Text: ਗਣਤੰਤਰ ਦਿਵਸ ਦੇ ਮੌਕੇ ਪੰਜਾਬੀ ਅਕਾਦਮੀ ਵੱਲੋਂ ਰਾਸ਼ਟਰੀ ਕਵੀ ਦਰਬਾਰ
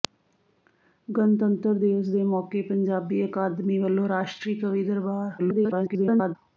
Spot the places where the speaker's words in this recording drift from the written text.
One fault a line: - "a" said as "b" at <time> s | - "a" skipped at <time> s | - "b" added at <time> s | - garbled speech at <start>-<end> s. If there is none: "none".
- garbled speech at 5.4-6.4 s